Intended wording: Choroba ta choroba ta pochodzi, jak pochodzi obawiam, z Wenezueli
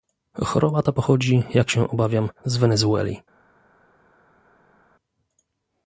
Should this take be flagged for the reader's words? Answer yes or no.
yes